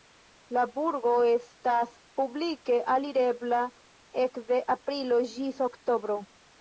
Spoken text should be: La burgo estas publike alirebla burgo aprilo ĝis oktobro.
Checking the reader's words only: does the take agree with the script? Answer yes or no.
no